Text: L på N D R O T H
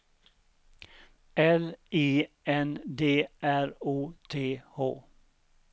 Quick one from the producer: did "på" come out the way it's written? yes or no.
no